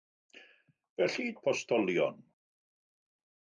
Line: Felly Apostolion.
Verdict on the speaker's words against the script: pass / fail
pass